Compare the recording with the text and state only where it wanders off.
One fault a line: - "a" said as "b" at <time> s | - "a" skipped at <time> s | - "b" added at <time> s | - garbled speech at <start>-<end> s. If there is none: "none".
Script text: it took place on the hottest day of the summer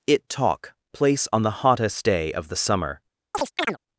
- "took" said as "talk" at 0.3 s